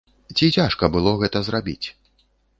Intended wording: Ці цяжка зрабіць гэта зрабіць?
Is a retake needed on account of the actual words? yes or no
yes